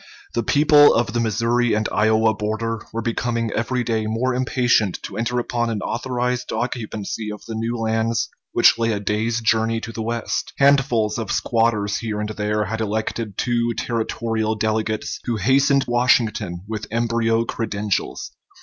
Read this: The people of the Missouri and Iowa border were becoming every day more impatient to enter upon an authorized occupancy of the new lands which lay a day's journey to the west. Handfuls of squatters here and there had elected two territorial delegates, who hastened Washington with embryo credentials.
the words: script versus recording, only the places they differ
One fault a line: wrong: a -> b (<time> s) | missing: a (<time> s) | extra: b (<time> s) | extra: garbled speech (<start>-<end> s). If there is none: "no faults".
no faults